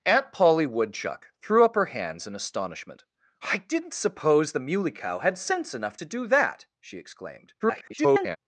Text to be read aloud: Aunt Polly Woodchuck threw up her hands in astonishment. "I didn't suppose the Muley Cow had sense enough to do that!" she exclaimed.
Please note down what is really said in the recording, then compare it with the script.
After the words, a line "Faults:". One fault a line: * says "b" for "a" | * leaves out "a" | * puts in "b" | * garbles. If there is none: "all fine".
Aunt Polly Woodchuck threw up her hands in astonishment. "I didn't suppose the Muley Cow had sense enough to do that!" she exclaimed. [garbled]
Faults:
* garbles